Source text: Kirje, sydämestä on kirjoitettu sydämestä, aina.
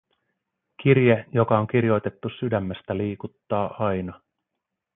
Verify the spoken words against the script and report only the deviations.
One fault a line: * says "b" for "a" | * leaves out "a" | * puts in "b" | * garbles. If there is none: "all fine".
* says "joka" for "sydämestä"
* puts in "liikuttaa"